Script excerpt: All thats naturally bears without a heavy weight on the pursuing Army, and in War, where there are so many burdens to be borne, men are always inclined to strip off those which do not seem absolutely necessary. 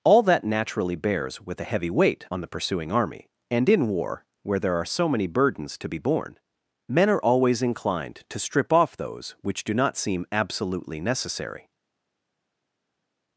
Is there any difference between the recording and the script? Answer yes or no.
yes